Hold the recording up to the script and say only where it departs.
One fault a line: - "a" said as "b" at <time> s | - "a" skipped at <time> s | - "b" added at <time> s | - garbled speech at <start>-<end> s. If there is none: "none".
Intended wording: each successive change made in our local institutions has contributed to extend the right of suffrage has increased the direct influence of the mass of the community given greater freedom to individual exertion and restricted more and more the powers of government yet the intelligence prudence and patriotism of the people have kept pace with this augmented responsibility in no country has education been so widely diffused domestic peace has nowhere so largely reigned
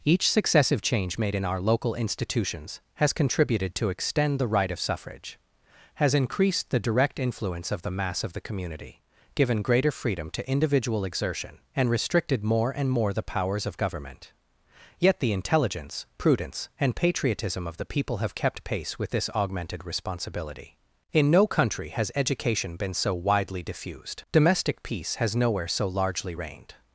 none